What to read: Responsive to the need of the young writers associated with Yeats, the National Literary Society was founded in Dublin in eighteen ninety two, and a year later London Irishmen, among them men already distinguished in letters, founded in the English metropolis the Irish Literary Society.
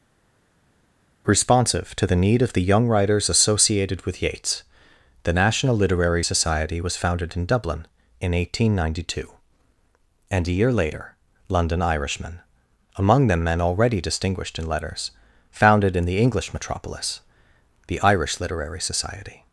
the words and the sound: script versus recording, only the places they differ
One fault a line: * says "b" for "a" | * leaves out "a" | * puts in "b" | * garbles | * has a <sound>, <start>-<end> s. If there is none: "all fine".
all fine